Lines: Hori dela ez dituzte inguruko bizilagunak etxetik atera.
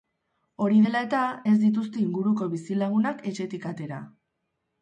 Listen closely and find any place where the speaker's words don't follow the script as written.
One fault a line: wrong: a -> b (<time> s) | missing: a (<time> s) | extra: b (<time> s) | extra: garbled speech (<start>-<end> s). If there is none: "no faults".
extra: eta (1.1 s)